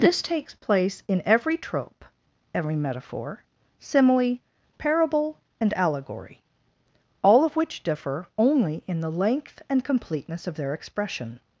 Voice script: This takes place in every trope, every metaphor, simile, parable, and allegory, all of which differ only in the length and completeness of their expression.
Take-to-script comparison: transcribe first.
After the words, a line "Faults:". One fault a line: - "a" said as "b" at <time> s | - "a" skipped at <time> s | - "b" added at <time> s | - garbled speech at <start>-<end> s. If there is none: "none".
This takes place in every trope, every metaphor, simile, parable, and allegory, all of which differ only in the length and completeness of their expression.
Faults:
none